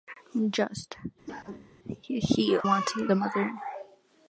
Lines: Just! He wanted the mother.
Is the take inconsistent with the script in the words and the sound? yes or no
yes